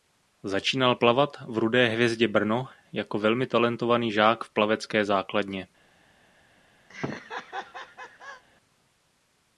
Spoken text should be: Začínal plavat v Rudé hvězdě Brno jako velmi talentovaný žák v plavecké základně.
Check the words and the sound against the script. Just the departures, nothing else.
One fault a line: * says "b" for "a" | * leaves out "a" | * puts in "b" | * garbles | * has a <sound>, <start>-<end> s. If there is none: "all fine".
* has a laugh, 6.9-8.4 s